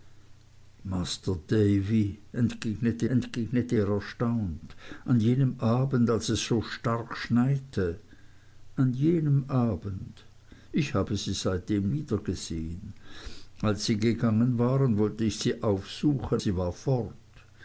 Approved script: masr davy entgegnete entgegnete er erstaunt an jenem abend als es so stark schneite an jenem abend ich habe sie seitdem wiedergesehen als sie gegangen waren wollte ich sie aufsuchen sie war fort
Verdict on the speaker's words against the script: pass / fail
pass